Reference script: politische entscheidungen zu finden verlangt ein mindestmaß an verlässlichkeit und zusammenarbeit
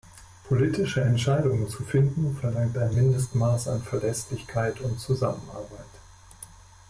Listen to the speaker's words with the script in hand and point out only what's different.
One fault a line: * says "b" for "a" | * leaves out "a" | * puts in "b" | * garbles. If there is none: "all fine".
all fine